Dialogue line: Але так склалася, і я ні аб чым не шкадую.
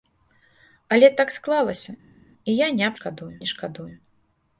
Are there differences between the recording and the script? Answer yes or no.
yes